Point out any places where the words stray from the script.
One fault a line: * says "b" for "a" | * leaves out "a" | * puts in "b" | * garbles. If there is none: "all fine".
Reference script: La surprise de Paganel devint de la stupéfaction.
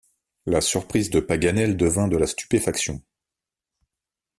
all fine